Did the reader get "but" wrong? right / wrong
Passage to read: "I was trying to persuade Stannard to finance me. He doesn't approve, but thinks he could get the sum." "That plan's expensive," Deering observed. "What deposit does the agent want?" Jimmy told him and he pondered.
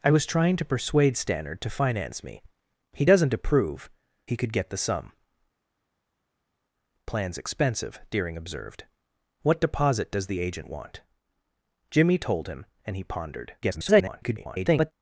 wrong